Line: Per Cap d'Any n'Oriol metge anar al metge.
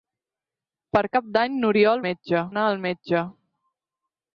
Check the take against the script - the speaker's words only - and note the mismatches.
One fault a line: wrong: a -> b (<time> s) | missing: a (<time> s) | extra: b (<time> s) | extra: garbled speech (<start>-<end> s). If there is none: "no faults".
no faults